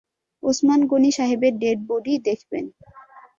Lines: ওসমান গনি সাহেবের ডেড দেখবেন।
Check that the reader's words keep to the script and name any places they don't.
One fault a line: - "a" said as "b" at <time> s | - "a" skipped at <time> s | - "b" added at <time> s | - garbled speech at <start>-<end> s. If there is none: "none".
- "বডি" added at 1.9 s